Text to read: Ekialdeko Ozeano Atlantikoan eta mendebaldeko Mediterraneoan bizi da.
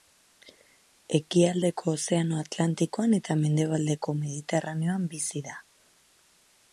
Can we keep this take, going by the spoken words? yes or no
yes